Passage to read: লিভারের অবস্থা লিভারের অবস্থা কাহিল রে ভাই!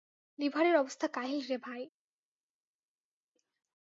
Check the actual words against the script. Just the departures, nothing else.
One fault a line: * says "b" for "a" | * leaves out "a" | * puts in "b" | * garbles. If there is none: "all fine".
* leaves out "লিভারের অবস্থা"